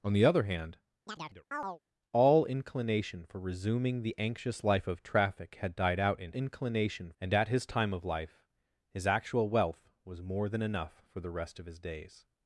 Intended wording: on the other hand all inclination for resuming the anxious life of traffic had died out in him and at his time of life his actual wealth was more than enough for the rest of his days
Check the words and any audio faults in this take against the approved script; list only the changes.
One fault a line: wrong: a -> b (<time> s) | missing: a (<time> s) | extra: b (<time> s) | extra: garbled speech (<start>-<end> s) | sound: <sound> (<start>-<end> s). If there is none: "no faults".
sound: chirp (1.1-1.8 s)
wrong: him -> inclination (6.3 s)